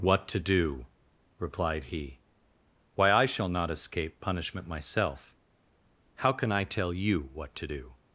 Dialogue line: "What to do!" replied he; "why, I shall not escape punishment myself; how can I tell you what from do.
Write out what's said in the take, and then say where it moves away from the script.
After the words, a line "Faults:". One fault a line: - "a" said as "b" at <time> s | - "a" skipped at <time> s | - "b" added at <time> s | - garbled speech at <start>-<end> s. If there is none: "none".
"What to do!" replied he; "why, I shall not escape punishment myself; how can I tell you what to do.
Faults:
- "from" said as "to" at 7.6 s